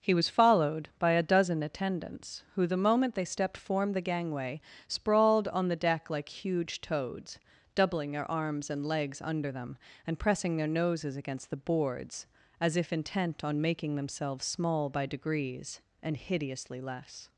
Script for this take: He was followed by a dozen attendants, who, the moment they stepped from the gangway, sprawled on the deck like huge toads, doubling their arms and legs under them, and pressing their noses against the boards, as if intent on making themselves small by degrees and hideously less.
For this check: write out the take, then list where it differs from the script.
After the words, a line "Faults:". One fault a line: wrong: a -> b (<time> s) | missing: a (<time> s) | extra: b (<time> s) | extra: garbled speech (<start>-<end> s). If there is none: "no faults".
He was followed by a dozen attendants, who, the moment they stepped form the gangway, sprawled on the deck like huge toads, doubling their arms and legs under them, and pressing their noses against the boards, as if intent on making themselves small by degrees and hideously less.
Faults:
wrong: from -> form (3.5 s)